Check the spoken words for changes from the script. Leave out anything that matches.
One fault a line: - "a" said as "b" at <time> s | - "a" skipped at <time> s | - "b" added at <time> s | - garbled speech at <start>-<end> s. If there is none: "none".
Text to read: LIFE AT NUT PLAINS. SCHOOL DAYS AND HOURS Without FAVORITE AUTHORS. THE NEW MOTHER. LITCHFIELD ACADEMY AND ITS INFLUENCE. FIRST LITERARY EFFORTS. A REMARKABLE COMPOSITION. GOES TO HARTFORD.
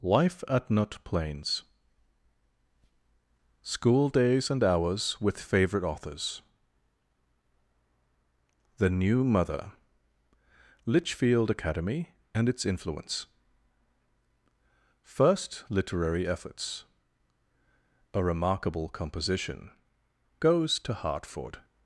- "Without" said as "WITH" at 5.2 s